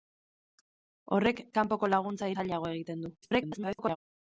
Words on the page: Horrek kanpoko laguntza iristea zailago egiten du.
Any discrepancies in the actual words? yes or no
yes